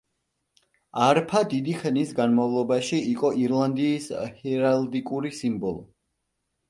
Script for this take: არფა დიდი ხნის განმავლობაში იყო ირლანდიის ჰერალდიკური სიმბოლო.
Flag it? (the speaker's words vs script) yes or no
no